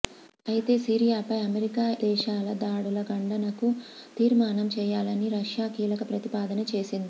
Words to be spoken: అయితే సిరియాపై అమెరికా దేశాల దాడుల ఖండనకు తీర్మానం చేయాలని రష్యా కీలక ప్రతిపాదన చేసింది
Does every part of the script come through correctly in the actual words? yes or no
yes